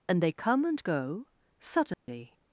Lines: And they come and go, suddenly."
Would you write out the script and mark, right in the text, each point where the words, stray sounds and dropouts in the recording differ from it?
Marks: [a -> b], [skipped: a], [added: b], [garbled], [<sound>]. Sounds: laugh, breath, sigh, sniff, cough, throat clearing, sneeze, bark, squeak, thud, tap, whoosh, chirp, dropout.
And they come and go, suddenly." [dropout]